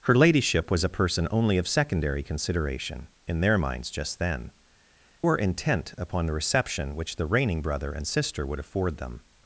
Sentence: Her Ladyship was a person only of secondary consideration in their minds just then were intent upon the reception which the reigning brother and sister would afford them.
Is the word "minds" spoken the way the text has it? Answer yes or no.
yes